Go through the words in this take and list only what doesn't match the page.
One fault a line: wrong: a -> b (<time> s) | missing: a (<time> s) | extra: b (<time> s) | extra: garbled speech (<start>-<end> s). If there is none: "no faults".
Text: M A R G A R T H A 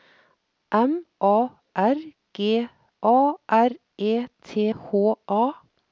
extra: E (4.0 s)